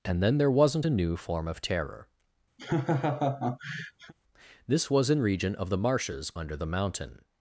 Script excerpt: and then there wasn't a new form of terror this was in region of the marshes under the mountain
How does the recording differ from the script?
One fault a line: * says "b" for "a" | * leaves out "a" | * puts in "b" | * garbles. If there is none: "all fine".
all fine